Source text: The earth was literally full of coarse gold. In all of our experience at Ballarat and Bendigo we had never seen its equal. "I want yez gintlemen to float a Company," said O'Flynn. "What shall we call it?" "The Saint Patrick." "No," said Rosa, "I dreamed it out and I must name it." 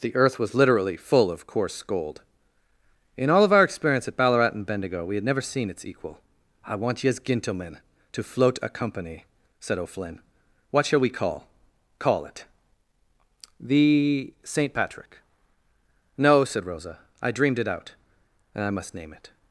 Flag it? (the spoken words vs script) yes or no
yes